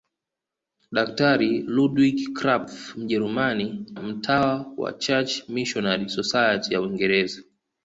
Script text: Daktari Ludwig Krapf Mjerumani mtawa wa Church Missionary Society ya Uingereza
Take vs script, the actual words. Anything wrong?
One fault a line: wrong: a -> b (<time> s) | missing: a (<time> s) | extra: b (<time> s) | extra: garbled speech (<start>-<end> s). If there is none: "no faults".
no faults